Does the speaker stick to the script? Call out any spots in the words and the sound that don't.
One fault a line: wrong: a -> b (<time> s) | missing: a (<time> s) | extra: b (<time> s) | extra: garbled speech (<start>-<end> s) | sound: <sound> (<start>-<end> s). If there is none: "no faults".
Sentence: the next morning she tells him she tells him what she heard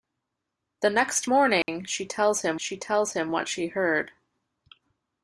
sound: dropout (1.6-1.7 s)